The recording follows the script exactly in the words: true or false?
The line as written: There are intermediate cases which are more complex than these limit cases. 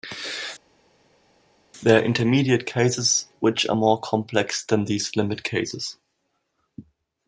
true